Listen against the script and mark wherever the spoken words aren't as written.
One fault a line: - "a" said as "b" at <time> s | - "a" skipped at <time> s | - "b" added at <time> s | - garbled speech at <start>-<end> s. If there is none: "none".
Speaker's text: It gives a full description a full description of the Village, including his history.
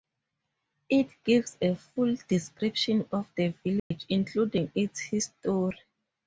- "a full description" skipped at 3.1 s
- "his" said as "its" at 4.7 s